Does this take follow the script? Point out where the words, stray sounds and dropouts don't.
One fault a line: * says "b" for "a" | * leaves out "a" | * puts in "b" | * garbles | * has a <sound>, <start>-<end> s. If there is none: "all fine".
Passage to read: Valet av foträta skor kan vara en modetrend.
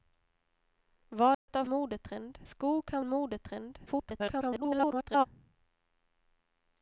* has a dropout, 1.3-1.5 s
* says "modetrend" for "foträta"
* leaves out "vara"
* garbles